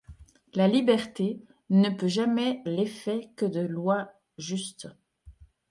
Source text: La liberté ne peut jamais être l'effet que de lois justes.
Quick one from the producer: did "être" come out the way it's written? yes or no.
no